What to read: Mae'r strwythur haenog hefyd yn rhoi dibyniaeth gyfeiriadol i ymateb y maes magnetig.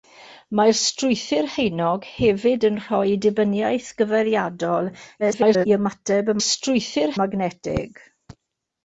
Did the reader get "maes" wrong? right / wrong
wrong